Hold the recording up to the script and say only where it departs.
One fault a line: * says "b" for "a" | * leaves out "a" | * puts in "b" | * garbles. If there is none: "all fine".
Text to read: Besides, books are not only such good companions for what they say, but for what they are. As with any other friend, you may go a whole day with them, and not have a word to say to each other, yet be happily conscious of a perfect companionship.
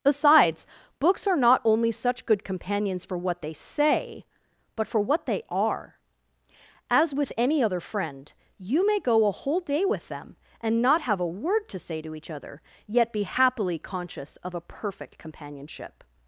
all fine